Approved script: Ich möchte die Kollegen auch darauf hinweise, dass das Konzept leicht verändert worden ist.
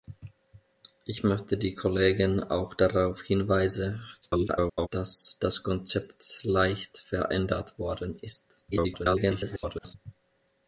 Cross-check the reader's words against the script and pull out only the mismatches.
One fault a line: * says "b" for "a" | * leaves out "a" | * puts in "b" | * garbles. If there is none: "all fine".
* garbles
* garbles